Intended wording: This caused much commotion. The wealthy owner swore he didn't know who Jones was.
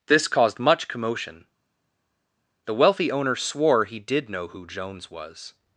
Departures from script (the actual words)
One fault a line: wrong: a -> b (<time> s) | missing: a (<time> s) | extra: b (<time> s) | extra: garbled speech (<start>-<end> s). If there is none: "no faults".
wrong: didn't -> did (4.0 s)